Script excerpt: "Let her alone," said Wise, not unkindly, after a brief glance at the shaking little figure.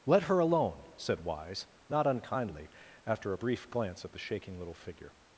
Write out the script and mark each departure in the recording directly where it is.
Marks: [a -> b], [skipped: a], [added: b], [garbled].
"Let her alone," said Wise, not unkindly, after a brief glance at the shaking little figure.